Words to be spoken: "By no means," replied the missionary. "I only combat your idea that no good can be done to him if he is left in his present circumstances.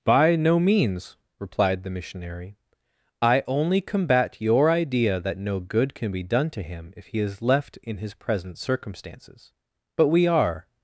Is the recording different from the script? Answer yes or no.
yes